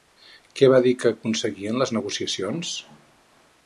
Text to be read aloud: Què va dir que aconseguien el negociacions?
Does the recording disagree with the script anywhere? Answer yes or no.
yes